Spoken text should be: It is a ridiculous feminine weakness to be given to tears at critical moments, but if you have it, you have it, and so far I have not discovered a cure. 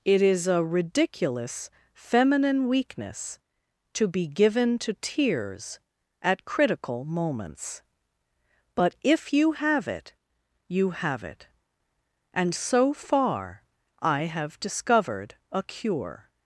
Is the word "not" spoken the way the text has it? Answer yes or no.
no